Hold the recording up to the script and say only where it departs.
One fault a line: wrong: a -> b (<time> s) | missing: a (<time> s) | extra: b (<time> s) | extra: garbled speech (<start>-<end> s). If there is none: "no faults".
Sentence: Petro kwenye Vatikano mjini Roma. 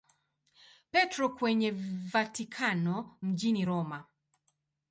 no faults